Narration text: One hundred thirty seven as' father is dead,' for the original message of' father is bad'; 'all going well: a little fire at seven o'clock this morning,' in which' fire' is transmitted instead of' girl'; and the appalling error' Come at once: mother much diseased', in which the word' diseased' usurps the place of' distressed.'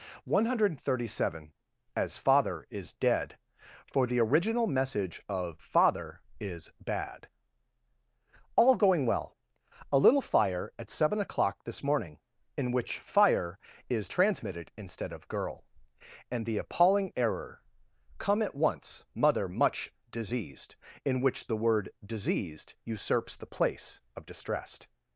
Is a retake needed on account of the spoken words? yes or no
no